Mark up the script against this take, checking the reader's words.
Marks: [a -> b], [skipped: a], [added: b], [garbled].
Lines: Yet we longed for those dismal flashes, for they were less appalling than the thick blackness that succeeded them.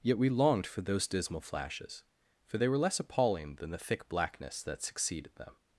Yet we longed for those dismal flashes, for they were less appalling than the thick blackness that succeeded them.